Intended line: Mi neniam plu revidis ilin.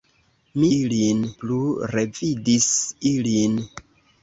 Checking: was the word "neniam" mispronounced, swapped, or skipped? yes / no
yes